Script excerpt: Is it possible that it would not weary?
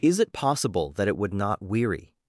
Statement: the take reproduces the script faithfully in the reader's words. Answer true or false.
true